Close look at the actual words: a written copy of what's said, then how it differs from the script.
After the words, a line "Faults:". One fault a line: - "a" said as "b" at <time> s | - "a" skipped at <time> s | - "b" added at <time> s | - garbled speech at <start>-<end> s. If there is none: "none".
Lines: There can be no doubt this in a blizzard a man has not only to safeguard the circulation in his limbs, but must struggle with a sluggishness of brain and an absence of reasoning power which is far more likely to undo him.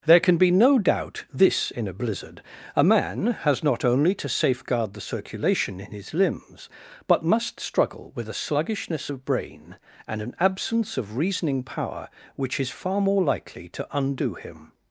There can be no doubt this in a blizzard a man has not only to safeguard the circulation in his limbs, but must struggle with a sluggishness of brain and an absence of reasoning power which is far more likely to undo him.
Faults:
none